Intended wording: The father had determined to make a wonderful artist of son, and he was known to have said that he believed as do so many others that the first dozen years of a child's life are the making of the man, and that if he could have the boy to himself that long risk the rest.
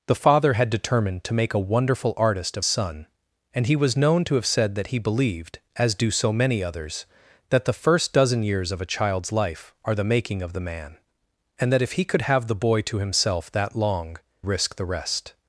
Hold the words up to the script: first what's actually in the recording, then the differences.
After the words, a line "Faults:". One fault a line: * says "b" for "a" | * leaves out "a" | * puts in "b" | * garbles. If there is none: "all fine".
The father had determined to make a wonderful artist of son, and he was known to have said that he believed as do so many others that the first dozen years of a child's life are the making of the man, and that if he could have the boy to himself that long risk the rest.
Faults:
all fine